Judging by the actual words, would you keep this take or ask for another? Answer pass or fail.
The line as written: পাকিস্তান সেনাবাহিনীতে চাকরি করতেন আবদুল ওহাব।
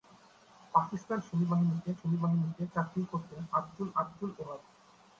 fail